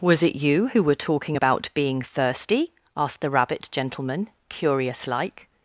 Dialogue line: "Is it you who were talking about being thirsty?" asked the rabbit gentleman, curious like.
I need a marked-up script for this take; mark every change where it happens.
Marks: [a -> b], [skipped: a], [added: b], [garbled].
["Is -> Was] it you who were talking about being thirsty?" asked the rabbit gentleman, curious like.